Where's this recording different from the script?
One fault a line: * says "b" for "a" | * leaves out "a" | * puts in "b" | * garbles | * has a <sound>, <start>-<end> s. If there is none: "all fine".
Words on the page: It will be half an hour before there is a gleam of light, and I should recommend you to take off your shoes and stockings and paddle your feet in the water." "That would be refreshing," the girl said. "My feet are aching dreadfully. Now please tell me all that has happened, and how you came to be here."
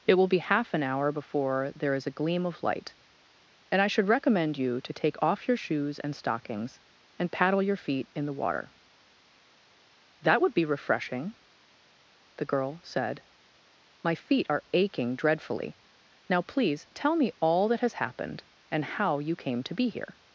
all fine